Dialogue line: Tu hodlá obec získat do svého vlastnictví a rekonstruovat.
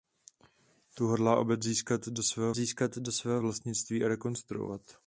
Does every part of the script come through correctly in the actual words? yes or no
no